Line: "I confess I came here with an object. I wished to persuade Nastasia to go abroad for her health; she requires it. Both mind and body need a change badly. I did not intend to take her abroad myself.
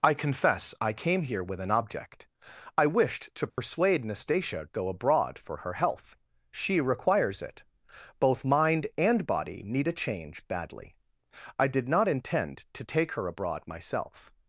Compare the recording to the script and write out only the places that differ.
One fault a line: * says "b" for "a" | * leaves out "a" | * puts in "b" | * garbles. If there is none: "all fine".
* leaves out "to"